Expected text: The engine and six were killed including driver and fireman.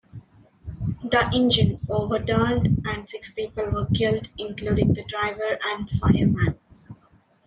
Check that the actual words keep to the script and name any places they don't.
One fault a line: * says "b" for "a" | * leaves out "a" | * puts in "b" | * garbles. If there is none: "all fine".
* puts in "overturned"
* puts in "people"
* puts in "the"